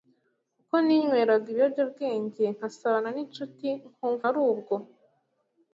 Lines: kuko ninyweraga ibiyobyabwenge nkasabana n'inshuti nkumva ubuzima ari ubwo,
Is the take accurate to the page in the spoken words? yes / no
no